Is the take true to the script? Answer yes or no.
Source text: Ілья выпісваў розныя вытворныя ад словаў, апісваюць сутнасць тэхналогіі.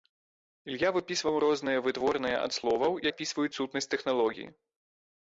yes